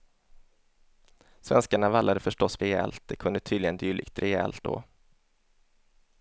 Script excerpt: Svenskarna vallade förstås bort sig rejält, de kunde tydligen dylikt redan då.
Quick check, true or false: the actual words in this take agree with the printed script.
false